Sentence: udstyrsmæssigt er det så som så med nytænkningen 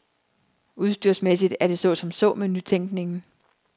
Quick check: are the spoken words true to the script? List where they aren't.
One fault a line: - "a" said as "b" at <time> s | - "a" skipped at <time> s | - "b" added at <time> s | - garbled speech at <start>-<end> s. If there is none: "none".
none